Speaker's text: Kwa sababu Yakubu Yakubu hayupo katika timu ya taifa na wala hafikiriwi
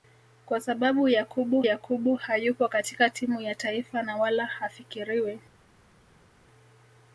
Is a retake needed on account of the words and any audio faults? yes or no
no